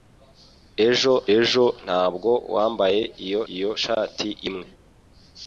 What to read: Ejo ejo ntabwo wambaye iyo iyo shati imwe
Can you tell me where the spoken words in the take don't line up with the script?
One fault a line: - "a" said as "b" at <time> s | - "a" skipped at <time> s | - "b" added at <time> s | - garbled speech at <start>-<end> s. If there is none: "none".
none